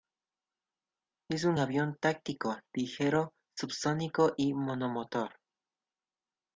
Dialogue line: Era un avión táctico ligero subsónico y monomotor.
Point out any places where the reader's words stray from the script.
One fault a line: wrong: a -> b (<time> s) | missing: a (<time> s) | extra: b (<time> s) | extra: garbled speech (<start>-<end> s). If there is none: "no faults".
wrong: Era -> Es (1.3 s)